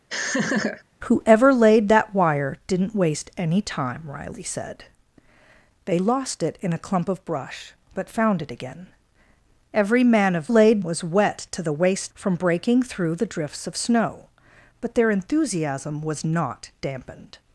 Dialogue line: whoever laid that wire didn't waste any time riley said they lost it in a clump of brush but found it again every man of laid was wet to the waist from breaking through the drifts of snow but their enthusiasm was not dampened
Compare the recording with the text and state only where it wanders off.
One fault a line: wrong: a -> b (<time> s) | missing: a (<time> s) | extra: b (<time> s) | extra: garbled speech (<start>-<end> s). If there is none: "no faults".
no faults